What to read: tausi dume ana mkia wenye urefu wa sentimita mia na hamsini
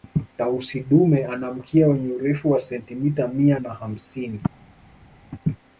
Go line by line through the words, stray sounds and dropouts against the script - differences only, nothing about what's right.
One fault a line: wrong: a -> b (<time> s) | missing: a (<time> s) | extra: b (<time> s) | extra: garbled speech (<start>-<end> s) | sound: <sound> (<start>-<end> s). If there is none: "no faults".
no faults